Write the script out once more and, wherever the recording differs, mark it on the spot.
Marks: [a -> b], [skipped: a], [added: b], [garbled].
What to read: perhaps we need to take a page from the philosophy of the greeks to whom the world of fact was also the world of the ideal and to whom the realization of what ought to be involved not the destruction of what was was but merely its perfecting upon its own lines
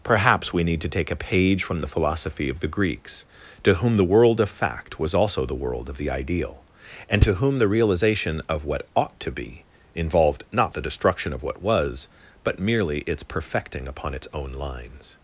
perhaps we need to take a page from the philosophy of the greeks to whom the world of fact was also the world of the ideal and to whom the realization of what ought to be involved not the destruction of what was [skipped: was] but merely its perfecting upon its own lines